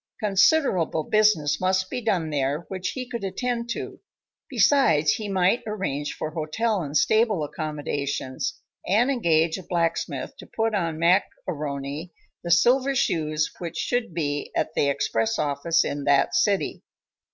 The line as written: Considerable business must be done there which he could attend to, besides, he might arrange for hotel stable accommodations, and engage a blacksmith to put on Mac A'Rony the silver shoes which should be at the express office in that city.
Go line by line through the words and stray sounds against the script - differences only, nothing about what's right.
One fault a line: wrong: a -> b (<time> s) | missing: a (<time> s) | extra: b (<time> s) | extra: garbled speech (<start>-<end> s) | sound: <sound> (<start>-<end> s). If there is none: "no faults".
extra: and (6.8 s)